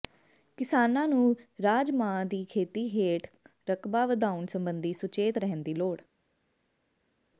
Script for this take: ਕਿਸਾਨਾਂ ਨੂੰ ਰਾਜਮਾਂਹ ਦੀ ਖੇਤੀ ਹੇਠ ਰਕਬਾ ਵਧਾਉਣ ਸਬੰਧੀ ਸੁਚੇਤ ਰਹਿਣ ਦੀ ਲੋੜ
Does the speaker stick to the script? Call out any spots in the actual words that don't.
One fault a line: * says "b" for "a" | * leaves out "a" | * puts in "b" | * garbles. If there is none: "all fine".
all fine